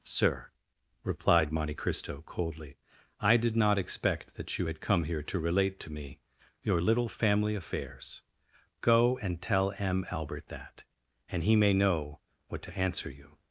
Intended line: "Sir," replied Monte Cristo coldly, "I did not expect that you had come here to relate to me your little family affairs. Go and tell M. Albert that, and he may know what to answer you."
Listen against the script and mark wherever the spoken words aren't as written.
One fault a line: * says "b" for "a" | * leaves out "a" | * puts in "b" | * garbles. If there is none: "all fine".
all fine